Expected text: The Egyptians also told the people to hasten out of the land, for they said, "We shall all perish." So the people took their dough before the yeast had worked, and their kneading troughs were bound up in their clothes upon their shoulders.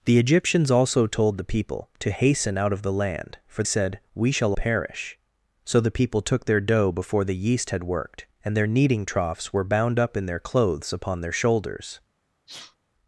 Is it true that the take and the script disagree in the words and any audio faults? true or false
true